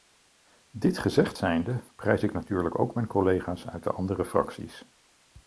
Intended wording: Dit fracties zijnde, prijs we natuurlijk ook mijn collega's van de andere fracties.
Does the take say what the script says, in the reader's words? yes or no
no